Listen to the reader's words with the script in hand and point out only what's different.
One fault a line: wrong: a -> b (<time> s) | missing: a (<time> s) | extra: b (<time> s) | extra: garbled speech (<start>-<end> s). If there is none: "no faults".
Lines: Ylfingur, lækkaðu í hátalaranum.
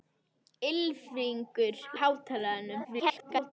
missing: lækkaðu (1.8 s)
extra: garbled speech (2.8-3.5 s)